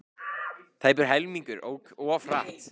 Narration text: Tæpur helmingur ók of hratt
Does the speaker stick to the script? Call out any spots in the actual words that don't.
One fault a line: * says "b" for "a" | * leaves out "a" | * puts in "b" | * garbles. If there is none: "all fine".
all fine